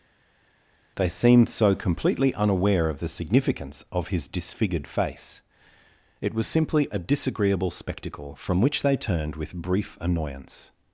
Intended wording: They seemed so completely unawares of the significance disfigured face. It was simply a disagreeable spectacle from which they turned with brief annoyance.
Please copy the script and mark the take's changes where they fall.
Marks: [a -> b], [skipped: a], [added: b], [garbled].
They seemed so completely [unawares -> unaware] of the significance [added: of his] disfigured face. It was simply a disagreeable spectacle from which they turned with brief annoyance.